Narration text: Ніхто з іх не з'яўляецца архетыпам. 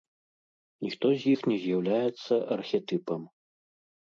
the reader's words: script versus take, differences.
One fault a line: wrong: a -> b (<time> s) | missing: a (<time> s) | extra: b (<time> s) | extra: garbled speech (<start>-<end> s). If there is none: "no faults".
no faults